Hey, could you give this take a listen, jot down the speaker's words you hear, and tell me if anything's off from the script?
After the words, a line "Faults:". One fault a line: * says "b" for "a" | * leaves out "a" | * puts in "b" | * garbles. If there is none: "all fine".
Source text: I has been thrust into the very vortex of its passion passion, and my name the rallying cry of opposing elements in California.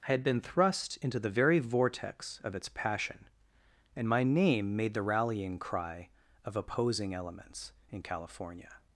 I had been thrust into the very vortex of its passion, and my name made the rallying cry of opposing elements in California.
Faults:
* says "had" for "has"
* leaves out "passion"
* puts in "made"